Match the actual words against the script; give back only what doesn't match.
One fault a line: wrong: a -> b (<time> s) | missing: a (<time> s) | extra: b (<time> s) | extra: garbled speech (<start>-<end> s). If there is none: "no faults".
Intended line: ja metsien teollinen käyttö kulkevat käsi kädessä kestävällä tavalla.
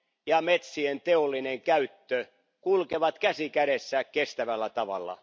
no faults